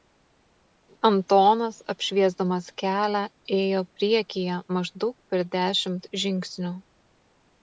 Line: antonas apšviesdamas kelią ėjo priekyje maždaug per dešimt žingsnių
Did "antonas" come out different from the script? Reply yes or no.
no